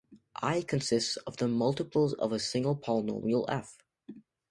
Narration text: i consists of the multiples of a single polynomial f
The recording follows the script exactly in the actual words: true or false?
true